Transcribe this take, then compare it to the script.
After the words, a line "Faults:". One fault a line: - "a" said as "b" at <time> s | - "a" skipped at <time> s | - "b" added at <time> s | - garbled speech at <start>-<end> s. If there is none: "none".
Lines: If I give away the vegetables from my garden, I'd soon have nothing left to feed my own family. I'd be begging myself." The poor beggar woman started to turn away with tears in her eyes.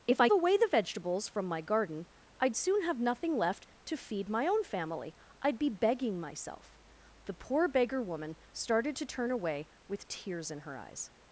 If I away the vegetables from my garden, I'd soon have nothing left to feed my own family. I'd be begging myself." The poor beggar woman started to turn away with tears in her eyes.
Faults:
- "give" skipped at 0.3 s